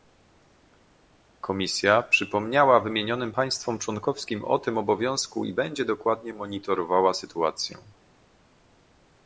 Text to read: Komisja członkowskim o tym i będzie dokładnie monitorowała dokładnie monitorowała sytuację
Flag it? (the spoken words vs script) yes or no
yes